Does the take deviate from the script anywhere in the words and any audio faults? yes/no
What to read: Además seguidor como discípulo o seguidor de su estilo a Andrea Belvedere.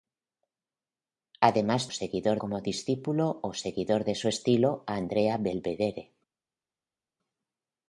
no